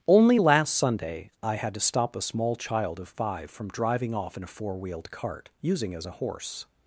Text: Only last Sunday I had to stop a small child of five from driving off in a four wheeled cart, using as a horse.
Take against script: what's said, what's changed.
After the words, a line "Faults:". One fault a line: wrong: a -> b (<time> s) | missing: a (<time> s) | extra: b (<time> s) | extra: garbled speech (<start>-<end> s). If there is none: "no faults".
Only last Sunday I had to stop a small child of five from driving off in a four wheeled cart, using as a horse.
Faults:
no faults